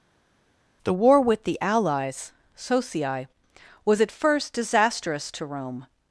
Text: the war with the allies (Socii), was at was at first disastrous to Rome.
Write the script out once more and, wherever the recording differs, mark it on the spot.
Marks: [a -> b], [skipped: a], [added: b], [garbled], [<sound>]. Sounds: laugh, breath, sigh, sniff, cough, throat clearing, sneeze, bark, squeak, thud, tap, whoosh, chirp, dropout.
the war with the allies (Socii), was at [skipped: was at] first disastrous to Rome.